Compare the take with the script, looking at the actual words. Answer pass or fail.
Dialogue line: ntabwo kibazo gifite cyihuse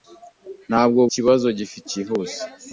pass